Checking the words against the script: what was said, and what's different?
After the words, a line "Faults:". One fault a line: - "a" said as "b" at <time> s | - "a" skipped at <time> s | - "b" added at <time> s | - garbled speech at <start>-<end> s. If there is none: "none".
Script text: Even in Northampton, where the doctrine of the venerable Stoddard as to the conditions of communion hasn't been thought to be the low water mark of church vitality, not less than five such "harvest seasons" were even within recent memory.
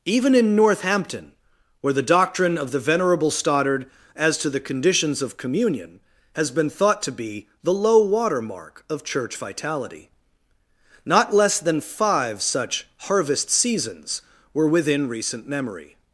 Even in Northampton, where the doctrine of the venerable Stoddard as to the conditions of communion has been thought to be the low water mark of church vitality, not less than five such "harvest seasons" were within recent memory.
Faults:
- "hasn't" said as "has" at 6.3 s
- "even" skipped at 14.7 s